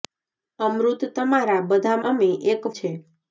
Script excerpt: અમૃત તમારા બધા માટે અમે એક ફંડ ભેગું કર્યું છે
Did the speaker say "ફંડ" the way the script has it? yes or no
no